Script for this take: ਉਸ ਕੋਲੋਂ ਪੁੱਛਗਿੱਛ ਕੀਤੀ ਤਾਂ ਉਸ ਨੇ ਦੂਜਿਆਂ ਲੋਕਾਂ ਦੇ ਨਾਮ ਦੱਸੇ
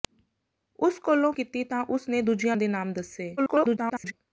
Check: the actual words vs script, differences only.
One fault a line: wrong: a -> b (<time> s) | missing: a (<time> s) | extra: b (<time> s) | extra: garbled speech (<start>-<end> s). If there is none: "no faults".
missing: ਪੁੱਛਗਿੱਛ (1.3 s)
missing: ਲੋਕਾਂ (2.6 s)
extra: garbled speech (3.4-4.1 s)